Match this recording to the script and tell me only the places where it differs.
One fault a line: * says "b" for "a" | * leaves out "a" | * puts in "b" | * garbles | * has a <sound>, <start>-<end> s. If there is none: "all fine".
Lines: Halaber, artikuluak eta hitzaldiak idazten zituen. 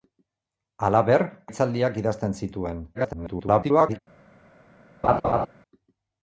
* leaves out "artikuluak eta"
* garbles
* has a laugh, 5.0-5.5 s